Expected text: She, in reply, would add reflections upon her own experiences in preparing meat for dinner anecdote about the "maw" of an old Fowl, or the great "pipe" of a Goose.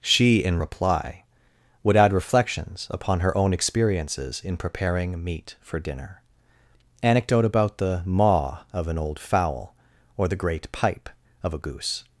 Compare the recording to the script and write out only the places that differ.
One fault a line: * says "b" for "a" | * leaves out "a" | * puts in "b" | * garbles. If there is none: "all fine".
all fine